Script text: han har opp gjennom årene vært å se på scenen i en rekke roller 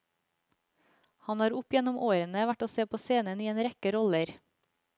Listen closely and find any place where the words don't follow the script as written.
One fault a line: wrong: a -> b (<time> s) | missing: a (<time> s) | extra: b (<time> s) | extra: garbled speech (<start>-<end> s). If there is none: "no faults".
no faults